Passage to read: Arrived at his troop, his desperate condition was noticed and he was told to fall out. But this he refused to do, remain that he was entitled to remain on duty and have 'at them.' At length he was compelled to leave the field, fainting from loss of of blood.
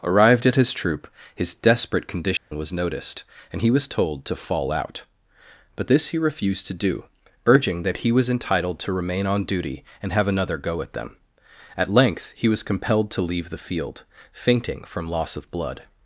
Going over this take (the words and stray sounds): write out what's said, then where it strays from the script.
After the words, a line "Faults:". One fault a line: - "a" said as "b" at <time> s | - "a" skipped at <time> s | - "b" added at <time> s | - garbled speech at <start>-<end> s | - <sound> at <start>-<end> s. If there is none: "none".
Arrived at his troop, his desperate condition was noticed and he was told to fall out. But this he refused to do, urging that he was entitled to remain on duty and have 'another go at them.' At length he was compelled to leave the field, fainting from loss of blood.
Faults:
- dropout at 2.4-2.5 s
- "remain" said as "urging" at 7.5 s
- "another go" added at 10.3 s
- "of" skipped at 15.5 s